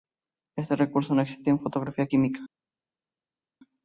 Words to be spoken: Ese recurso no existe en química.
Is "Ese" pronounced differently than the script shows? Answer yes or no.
yes